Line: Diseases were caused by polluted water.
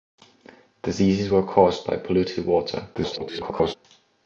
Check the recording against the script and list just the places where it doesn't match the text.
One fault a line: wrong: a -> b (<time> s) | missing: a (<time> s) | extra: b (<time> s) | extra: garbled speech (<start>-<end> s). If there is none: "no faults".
extra: garbled speech (2.9-3.8 s)